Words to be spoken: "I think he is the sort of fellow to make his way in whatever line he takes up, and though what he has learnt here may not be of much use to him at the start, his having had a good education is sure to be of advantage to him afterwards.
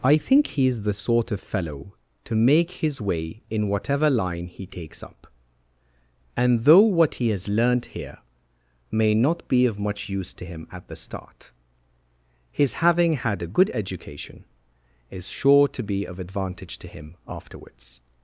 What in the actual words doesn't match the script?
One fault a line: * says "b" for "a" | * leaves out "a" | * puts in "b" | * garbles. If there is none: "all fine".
all fine